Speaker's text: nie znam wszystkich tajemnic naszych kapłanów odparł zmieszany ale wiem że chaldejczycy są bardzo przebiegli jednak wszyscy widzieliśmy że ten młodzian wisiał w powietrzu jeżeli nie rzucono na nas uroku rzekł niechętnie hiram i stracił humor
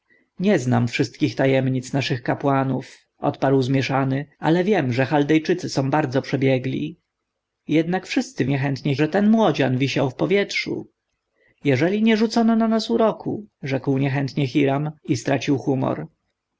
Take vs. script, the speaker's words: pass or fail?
fail